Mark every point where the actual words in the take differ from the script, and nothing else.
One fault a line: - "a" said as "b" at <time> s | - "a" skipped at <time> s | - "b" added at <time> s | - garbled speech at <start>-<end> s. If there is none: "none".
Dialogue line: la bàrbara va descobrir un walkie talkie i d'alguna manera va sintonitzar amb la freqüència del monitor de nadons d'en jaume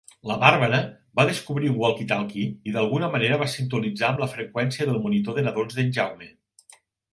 none